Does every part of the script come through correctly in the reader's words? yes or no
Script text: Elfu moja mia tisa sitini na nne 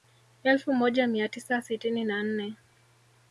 yes